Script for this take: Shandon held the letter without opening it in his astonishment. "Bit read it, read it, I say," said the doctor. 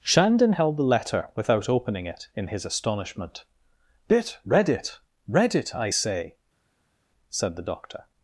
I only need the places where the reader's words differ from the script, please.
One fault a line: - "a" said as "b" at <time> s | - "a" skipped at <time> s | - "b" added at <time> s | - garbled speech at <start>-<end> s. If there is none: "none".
none